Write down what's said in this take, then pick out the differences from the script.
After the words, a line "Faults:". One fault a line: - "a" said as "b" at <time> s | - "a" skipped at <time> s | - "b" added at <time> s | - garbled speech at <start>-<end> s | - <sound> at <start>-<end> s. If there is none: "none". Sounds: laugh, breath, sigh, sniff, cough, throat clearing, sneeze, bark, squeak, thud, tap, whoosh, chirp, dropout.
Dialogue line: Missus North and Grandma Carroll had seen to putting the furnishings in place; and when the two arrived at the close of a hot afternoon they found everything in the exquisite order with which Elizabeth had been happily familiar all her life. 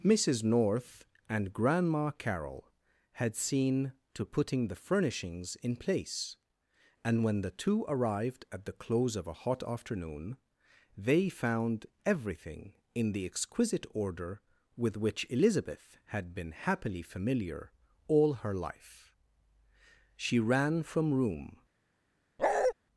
Missus North and Grandma Carroll had seen to putting the furnishings in place; and when the two arrived at the close of a hot afternoon they found everything in the exquisite order with which Elizabeth had been happily familiar all her life. She ran from room
Faults:
- "She ran from room" added at 20.1 s
- bark at 22.4-22.7 s